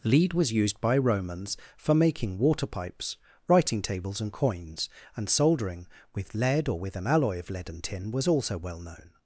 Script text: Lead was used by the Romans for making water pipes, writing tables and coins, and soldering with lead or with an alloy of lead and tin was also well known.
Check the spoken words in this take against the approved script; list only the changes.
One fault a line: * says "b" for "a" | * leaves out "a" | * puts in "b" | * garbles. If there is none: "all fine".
* leaves out "the"